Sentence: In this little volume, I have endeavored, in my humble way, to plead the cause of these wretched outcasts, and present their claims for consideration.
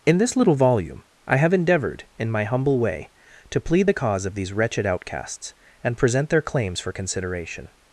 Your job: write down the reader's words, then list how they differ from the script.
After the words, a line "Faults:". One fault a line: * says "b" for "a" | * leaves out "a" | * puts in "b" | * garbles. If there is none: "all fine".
In this little volume, I have endeavored, in my humble way, to plead the cause of these wretched outcasts, and present their claims for consideration.
Faults:
all fine